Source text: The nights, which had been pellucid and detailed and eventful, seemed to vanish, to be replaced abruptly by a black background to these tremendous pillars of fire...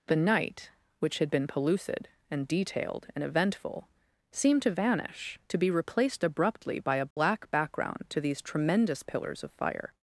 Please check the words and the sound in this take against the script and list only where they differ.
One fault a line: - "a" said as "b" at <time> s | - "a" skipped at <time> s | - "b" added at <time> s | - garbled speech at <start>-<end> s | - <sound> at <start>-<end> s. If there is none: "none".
- "nights" said as "night" at 0.1 s
- dropout at 7.1-7.2 s